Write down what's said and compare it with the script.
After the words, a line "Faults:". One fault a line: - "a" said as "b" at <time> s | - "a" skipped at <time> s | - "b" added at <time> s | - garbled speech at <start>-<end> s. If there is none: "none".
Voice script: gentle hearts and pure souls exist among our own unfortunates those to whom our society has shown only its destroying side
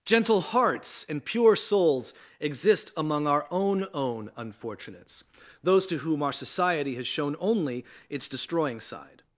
gentle hearts and pure souls exist among our own own unfortunates those to whom our society has shown only its destroying side
Faults:
- "own" added at 3.9 s